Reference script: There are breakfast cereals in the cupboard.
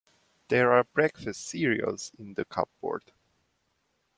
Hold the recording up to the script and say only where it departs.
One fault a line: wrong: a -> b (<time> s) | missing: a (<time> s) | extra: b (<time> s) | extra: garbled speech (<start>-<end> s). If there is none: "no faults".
no faults